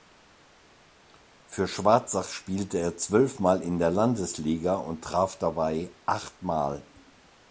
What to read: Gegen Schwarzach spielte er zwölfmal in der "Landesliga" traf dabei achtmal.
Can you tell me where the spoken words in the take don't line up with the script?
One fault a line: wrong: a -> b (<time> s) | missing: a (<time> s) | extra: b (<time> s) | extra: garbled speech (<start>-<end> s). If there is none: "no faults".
wrong: Gegen -> Für (1.4 s)
extra: und (4.8 s)